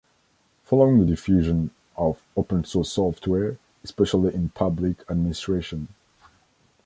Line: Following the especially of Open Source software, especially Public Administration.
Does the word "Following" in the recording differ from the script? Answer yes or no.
no